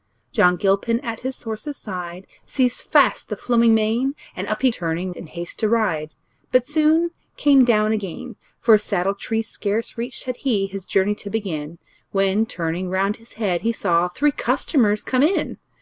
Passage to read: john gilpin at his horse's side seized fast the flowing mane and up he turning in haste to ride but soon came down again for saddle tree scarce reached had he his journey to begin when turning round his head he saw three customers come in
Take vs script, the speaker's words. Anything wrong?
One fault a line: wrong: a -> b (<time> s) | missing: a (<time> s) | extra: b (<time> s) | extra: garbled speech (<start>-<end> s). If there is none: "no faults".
no faults